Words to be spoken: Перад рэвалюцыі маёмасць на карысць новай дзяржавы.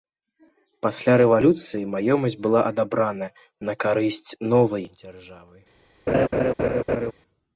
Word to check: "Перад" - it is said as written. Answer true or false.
false